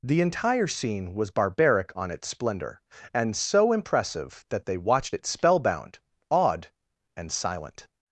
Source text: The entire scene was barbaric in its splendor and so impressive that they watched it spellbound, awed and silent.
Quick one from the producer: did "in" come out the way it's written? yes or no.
no